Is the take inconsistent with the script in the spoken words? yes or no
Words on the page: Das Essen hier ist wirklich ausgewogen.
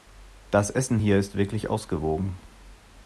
no